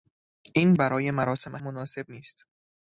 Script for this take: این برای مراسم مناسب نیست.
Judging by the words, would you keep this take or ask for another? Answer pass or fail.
pass